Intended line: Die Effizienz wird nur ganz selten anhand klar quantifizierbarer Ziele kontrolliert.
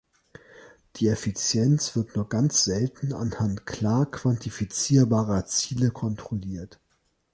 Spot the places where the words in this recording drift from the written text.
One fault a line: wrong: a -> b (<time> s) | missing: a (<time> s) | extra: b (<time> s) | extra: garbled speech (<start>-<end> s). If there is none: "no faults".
no faults